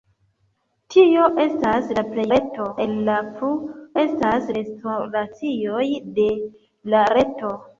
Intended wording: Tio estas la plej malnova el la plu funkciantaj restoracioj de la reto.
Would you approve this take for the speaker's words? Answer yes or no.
no